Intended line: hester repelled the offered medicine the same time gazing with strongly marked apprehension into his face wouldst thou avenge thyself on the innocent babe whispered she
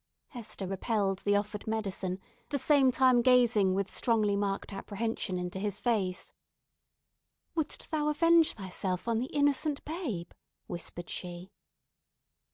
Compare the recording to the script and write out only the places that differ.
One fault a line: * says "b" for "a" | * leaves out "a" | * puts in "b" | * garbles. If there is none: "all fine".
all fine